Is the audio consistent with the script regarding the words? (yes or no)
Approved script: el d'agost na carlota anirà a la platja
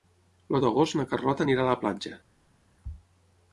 yes